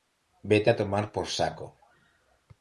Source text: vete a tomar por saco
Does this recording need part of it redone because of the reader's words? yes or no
no